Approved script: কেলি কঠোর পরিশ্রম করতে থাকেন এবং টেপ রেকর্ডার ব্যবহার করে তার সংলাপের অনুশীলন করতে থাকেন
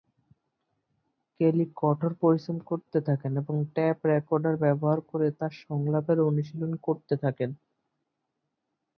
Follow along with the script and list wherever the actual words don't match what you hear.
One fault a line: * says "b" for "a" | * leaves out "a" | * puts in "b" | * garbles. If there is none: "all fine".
all fine